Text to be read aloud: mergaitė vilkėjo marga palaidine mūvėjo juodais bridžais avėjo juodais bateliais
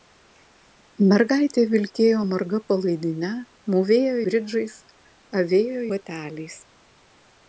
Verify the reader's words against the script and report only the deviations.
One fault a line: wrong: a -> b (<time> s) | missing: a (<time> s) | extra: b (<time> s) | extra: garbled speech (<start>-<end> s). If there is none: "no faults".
missing: juodais (4.2 s)
missing: juodais (5.9 s)